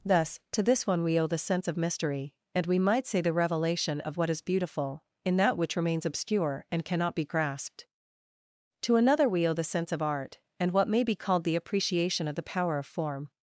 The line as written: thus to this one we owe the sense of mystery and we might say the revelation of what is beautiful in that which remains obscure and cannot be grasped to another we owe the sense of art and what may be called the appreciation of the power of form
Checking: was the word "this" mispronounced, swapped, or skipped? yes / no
no